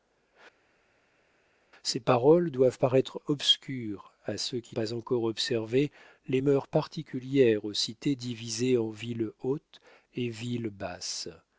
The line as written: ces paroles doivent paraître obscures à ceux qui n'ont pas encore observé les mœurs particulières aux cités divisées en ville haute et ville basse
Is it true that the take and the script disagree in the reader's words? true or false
true